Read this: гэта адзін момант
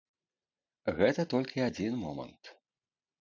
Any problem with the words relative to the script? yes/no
yes